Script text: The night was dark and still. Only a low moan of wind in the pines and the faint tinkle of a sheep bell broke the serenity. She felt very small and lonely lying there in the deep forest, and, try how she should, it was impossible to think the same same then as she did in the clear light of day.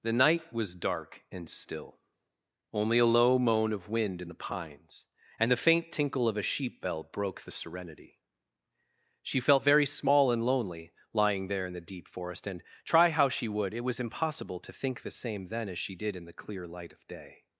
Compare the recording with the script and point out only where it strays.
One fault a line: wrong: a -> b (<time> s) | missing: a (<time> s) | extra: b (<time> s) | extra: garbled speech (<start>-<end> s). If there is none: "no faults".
wrong: should -> would (13.5 s)
missing: same (15.5 s)